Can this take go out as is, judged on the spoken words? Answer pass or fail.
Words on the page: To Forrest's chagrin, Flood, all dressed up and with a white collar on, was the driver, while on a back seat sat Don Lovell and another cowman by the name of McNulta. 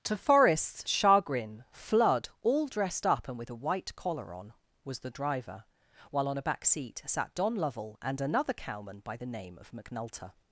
pass